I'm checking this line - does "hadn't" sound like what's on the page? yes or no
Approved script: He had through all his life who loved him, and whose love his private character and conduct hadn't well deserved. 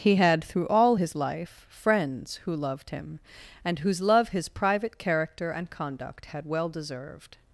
no